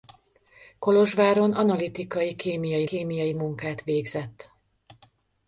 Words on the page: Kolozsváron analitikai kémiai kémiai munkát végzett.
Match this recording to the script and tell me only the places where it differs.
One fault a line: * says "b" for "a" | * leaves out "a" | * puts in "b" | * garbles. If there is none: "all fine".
all fine